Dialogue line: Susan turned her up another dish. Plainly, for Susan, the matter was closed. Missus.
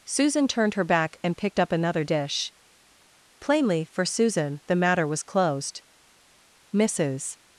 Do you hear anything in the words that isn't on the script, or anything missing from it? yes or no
yes